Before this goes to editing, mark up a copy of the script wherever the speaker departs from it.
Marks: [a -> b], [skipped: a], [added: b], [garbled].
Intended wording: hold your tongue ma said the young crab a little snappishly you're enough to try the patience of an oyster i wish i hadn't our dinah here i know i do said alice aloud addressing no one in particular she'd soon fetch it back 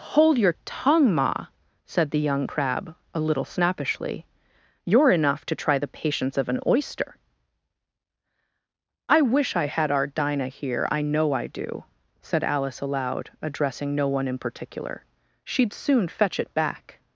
hold your tongue ma said the young crab a little snappishly you're enough to try the patience of an oyster i wish i [hadn't -> had] our dinah here i know i do said alice aloud addressing no one in particular she'd soon fetch it back